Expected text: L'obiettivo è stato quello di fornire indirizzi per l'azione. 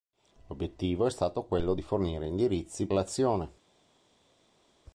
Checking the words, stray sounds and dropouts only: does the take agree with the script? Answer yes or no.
no